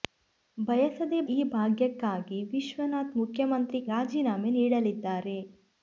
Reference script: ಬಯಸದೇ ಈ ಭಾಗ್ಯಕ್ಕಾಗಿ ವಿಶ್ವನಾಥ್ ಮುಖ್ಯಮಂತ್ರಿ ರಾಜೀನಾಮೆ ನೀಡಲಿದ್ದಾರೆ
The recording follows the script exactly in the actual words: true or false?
true